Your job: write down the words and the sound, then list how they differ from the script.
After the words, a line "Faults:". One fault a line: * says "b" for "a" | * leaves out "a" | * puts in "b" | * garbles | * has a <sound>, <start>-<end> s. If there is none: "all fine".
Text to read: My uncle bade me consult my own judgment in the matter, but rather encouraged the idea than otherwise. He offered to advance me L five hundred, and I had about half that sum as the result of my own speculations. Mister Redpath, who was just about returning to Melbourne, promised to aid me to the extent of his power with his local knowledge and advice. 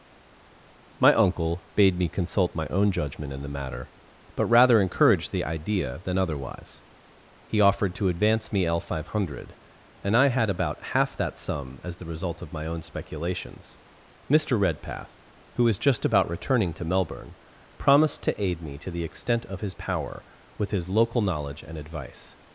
My uncle bade me consult my own judgment in the matter, but rather encouraged the idea than otherwise. He offered to advance me L five hundred, and I had about half that sum as the result of my own speculations. Mister Redpath, who was just about returning to Melbourne, promised to aid me to the extent of his power with his local knowledge and advice.
Faults:
all fine